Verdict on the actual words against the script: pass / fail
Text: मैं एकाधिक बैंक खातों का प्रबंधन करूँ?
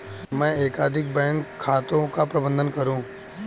pass